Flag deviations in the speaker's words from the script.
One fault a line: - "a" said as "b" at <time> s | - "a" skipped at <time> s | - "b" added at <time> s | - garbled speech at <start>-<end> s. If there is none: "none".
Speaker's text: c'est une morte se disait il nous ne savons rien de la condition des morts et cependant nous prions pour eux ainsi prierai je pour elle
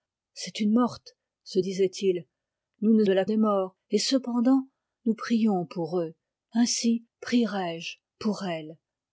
- "savons rien" skipped at 3.0 s
- "condition" skipped at 3.2 s